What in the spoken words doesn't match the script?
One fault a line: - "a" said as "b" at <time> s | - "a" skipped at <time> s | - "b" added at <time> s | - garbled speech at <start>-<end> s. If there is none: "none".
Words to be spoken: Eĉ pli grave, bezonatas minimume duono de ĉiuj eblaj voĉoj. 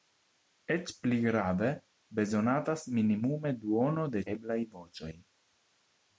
- "ĉiuj" skipped at 4.2 s